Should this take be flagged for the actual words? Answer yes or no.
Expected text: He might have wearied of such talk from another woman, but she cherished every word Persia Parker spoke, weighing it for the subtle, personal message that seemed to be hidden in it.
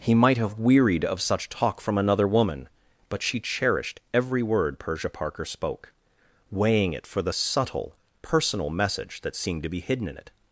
no